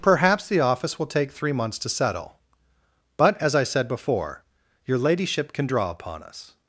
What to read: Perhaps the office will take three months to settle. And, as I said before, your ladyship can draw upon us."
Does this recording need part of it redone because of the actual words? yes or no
yes